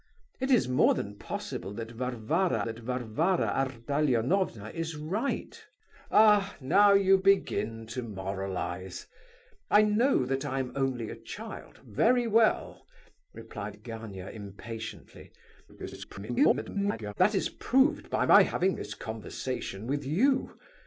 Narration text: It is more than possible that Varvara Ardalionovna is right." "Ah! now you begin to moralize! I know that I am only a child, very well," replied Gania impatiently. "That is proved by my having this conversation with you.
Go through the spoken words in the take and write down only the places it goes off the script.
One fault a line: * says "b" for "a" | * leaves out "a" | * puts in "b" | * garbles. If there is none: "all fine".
* puts in "that Varvara"
* garbles